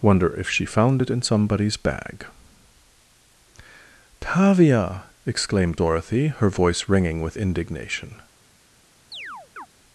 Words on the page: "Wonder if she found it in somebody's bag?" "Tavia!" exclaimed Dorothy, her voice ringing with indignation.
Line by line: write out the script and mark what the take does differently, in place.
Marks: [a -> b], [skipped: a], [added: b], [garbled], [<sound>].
"Wonder if she found it in somebody's bag?" "Tavia!" exclaimed Dorothy, her voice ringing with indignation. [chirp]